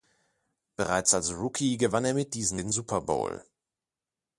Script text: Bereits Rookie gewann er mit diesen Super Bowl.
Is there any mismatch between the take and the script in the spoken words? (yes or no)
yes